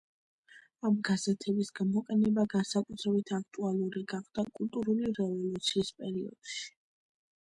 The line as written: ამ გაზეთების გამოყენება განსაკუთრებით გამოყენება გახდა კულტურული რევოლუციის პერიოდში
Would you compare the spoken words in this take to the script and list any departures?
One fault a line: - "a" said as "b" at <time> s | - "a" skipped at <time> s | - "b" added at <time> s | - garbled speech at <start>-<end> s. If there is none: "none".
- "გამოყენება" said as "აქტუალური" at 3.4 s